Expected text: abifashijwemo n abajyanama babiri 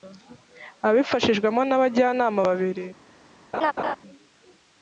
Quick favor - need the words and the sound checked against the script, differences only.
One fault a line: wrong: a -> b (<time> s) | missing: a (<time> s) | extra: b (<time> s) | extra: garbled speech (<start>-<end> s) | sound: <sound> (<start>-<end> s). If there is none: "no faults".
sound: laugh (3.5-4.0 s)